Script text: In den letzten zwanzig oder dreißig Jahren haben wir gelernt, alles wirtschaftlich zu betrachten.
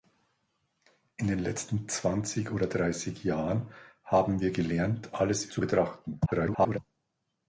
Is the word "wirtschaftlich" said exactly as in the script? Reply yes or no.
no